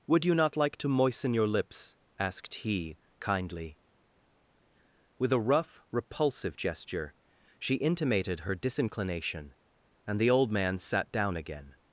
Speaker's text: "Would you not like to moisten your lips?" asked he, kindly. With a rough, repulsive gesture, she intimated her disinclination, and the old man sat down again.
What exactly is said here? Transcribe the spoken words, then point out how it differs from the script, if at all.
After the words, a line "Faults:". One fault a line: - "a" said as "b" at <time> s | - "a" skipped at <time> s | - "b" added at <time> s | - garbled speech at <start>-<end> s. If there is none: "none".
"Would you not like to moisten your lips?" asked he, kindly. With a rough, repulsive gesture, she intimated her disinclination, and the old man sat down again.
Faults:
none